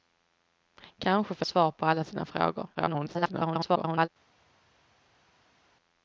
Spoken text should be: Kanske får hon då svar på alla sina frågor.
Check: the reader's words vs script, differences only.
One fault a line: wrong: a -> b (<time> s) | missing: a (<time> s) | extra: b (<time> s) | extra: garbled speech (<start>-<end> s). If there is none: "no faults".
missing: hon då (1.4 s)
extra: garbled speech (2.7-4.1 s)